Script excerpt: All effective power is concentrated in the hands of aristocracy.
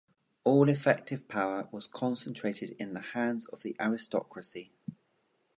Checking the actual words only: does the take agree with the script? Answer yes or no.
no